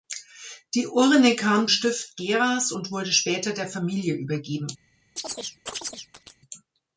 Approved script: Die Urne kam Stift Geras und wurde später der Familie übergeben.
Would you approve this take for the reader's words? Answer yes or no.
yes